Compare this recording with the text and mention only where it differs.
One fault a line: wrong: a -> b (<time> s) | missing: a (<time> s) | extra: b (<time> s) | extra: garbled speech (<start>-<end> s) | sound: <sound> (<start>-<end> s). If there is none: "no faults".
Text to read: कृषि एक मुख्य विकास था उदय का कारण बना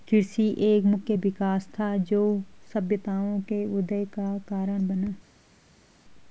extra: जो सभ्यताओं के (2.0 s)